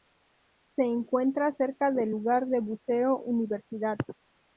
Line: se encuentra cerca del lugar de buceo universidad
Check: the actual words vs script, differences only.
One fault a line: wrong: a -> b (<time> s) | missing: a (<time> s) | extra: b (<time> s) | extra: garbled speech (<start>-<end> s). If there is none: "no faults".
no faults